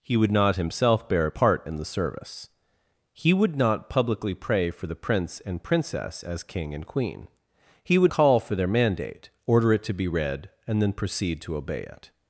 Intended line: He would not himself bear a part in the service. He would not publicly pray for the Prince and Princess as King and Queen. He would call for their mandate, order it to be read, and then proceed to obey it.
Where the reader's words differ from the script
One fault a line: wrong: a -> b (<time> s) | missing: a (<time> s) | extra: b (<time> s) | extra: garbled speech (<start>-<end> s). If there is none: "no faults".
no faults